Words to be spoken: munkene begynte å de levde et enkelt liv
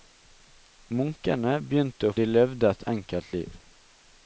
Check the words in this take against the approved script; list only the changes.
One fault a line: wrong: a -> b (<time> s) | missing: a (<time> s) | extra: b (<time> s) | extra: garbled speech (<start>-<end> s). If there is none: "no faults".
no faults